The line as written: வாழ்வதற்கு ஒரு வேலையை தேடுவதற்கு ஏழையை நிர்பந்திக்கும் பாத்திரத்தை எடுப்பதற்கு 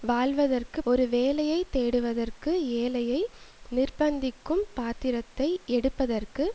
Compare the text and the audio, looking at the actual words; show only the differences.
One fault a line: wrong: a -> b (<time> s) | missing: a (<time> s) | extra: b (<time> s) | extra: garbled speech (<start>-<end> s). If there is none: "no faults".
no faults